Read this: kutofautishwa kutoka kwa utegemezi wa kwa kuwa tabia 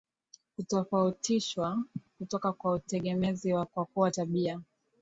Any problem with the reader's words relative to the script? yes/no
no